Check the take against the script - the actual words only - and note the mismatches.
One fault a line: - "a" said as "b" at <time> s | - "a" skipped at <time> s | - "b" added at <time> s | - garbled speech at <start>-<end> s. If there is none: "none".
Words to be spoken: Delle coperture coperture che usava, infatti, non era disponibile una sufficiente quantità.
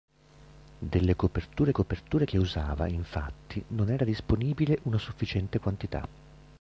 none